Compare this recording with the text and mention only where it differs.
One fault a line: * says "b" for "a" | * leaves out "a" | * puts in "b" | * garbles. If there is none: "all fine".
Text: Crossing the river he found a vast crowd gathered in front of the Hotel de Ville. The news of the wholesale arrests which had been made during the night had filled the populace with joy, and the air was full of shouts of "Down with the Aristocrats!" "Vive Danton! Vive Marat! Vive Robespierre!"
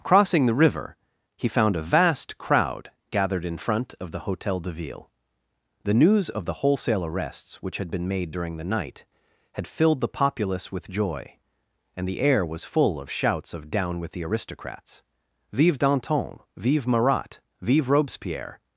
all fine